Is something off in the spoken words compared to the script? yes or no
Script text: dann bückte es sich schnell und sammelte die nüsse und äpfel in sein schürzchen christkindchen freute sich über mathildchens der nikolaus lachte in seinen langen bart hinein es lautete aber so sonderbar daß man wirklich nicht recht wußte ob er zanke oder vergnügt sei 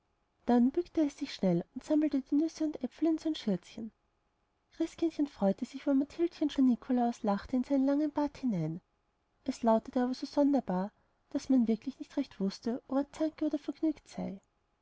no